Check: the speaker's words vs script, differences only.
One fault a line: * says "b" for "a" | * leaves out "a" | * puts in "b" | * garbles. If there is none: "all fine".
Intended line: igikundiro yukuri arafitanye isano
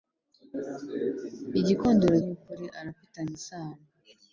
all fine